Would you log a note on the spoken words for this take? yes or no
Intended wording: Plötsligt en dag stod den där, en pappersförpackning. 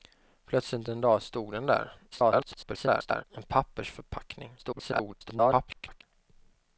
yes